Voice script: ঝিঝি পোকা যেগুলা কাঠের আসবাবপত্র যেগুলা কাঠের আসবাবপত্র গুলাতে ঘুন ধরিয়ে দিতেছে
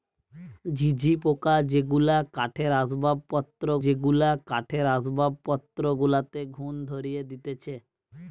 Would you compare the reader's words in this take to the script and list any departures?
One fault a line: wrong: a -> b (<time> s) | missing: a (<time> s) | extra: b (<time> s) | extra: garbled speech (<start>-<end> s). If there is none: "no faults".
no faults